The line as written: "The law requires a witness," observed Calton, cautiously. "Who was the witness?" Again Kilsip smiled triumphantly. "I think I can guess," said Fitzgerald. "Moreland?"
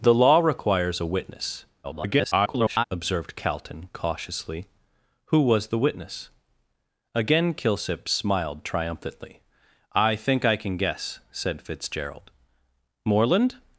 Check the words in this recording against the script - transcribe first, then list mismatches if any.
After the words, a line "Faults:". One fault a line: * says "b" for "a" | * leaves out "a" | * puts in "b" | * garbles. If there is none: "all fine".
"The law requires a witness," [garbled] observed Calton, cautiously. "Who was the witness?" Again Kilsip smiled triumphantly. "I think I can guess," said Fitzgerald. "Moreland?"
Faults:
* garbles